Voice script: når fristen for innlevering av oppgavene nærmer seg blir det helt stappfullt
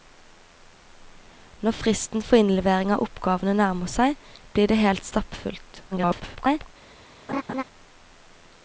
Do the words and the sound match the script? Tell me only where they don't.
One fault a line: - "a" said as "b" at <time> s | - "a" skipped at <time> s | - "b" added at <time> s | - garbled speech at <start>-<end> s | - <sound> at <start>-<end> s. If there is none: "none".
- garbled speech at 5.9-6.7 s
- laugh at 7.3-7.6 s